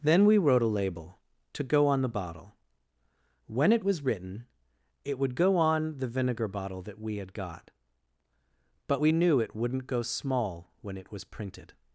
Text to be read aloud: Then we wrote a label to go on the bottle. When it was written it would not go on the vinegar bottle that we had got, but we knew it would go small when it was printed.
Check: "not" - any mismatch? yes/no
yes